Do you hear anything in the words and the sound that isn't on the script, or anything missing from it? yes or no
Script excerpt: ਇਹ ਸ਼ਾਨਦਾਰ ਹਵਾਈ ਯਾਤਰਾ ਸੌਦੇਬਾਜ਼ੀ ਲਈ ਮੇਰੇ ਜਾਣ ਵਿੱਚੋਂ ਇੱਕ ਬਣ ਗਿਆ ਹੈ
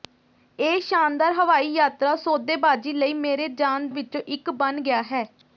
no